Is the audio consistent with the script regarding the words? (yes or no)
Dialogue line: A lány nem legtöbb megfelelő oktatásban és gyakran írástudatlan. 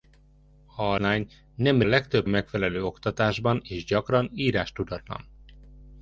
yes